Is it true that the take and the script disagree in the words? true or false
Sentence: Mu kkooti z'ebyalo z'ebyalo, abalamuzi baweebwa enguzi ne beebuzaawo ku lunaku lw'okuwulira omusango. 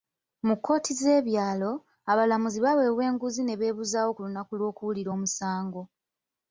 true